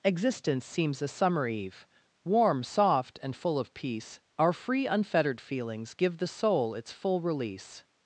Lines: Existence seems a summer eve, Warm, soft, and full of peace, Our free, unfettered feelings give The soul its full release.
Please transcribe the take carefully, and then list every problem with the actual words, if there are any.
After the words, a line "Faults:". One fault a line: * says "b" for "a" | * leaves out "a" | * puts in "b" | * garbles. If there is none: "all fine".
Existence seems a summer eve, Warm, soft, and full of peace, Our free, unfettered feelings give The soul its full release.
Faults:
all fine